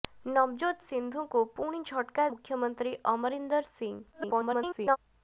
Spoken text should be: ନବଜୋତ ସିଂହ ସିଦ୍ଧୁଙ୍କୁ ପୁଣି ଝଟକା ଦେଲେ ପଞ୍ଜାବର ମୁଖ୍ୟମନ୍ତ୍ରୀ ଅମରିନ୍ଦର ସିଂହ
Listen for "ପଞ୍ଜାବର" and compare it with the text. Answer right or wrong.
wrong